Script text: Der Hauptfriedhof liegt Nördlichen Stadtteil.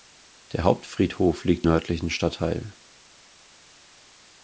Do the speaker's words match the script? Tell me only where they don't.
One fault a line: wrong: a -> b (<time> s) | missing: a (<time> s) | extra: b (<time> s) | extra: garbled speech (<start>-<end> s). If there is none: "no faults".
no faults